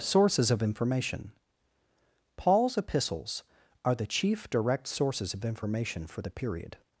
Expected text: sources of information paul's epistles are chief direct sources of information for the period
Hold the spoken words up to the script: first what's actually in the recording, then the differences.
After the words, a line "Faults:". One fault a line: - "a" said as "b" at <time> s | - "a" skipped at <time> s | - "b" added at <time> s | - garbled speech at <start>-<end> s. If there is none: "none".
sources of information paul's epistles are the chief direct sources of information for the period
Faults:
- "the" added at 3.9 s